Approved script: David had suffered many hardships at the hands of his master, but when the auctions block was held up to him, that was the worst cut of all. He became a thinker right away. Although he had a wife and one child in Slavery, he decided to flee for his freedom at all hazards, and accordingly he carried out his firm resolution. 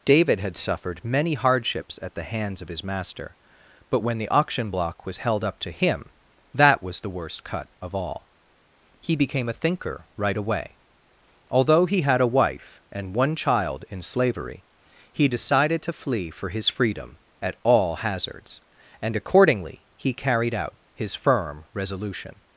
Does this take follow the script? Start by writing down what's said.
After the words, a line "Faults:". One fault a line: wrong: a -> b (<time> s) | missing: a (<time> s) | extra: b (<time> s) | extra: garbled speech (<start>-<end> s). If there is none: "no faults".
David had suffered many hardships at the hands of his master, but when the auction block was held up to him, that was the worst cut of all. He became a thinker right away. Although he had a wife and one child in Slavery, he decided to flee for his freedom at all hazards, and accordingly he carried out his firm resolution.
Faults:
wrong: auctions -> auction (4.3 s)